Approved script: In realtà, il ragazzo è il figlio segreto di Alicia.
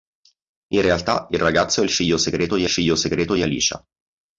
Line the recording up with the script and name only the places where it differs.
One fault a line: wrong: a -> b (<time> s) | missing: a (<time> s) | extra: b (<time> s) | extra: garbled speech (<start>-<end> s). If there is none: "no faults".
extra: figlio segreto di (2.7 s)